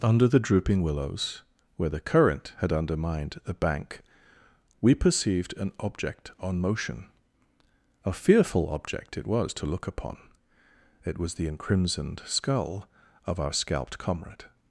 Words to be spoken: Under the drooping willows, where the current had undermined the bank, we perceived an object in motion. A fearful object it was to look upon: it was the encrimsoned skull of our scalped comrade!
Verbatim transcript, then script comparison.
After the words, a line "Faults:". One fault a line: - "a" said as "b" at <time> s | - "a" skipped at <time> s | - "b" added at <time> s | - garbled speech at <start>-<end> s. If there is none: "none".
Under the drooping willows, where the current had undermined the bank, we perceived an object on motion. A fearful object it was to look upon: it was the encrimsoned skull of our scalped comrade!
Faults:
- "in" said as "on" at 6.4 s